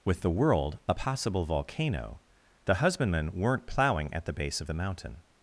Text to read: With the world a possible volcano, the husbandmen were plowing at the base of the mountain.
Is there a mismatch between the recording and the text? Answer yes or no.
yes